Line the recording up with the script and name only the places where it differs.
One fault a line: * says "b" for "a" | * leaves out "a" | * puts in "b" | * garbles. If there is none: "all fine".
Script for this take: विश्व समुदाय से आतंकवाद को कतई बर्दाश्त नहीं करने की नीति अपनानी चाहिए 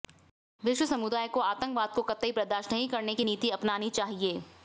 * says "को" for "से"